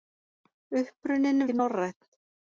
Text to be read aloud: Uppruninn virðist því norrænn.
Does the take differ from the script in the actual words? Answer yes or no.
yes